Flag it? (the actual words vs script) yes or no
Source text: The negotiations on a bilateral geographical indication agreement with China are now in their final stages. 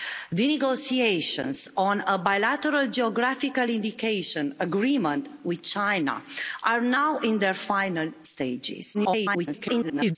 yes